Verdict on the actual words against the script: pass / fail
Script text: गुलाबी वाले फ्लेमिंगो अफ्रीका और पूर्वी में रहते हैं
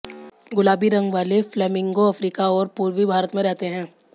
fail